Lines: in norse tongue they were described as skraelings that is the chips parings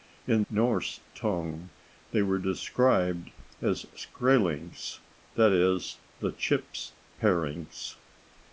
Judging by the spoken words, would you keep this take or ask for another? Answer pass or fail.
pass